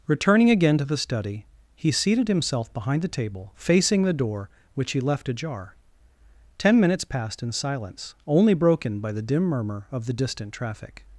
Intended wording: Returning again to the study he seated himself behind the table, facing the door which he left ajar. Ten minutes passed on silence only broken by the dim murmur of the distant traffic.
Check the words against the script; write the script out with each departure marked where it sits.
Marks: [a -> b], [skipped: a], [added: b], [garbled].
Returning again to the study he seated himself behind the table, facing the door which he left ajar. Ten minutes passed [on -> in] silence only broken by the dim murmur of the distant traffic.